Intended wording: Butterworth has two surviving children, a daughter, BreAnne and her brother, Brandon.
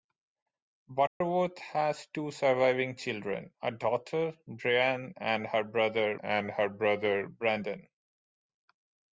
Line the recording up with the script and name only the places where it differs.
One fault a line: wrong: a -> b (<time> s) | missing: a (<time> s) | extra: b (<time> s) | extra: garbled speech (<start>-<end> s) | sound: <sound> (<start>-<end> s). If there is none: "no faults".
sound: dropout (1.1-1.2 s)
extra: and her brother (6.2 s)